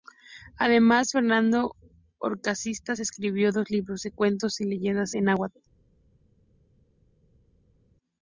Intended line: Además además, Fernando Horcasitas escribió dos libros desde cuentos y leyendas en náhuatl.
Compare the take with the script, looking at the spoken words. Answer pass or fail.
fail